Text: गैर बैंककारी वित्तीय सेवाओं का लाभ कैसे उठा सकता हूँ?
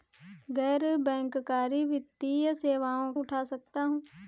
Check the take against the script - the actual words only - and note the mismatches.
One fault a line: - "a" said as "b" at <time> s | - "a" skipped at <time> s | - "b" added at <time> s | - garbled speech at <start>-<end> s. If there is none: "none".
- "का लाभ कैसे" skipped at 3.1 s